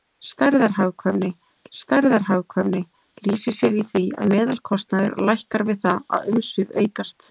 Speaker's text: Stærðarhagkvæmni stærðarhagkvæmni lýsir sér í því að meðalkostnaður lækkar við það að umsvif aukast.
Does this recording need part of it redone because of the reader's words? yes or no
no